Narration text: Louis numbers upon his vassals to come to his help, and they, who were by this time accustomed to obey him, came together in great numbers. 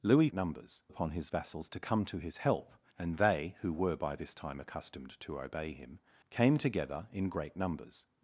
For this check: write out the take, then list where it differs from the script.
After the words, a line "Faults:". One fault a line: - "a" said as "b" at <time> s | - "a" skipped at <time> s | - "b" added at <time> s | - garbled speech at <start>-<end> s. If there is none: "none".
Louis numbers upon his vassals to come to his help, and they, who were by this time accustomed to obey him, came together in great numbers.
Faults:
none